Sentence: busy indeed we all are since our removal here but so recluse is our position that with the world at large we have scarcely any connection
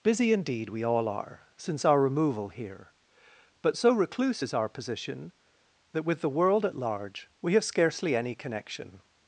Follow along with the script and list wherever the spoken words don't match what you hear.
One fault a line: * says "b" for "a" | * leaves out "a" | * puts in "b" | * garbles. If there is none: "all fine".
all fine